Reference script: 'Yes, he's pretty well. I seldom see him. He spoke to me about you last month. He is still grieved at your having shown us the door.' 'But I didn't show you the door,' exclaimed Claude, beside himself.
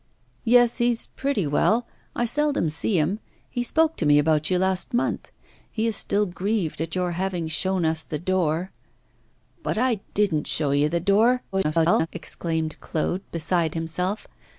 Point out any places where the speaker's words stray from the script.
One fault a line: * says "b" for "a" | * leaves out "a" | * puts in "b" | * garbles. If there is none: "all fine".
* garbles